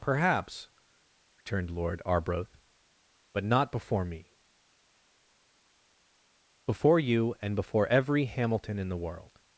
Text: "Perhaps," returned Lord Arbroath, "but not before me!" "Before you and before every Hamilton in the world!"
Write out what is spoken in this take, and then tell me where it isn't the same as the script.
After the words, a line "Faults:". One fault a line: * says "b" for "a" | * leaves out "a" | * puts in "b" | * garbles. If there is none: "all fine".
"Perhaps," returned Lord Arbroath, "but not before me!" "Before you and before every Hamilton in the world!"
Faults:
all fine